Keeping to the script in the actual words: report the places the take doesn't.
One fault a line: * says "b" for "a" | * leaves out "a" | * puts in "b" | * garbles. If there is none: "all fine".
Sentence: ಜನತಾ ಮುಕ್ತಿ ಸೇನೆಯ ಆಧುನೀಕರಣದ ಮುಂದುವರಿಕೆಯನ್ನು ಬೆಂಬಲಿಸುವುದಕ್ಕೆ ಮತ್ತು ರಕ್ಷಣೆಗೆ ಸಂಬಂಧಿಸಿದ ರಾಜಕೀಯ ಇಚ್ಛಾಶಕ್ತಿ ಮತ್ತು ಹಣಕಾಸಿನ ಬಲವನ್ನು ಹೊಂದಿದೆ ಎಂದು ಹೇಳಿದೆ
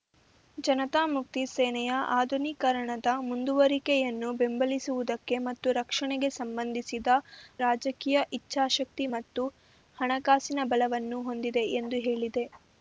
all fine